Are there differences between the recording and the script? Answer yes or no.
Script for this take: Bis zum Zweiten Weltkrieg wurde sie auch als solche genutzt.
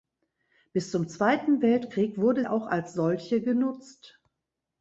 yes